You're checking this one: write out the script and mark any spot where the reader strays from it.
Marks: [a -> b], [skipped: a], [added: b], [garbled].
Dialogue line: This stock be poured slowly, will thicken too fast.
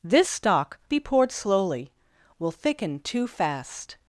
This stock be poured slowly, will thicken too fast.